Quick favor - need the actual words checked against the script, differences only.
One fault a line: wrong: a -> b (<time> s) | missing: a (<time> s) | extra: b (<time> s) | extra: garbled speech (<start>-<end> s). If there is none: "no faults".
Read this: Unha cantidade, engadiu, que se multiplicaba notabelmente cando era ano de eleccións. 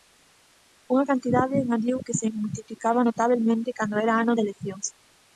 no faults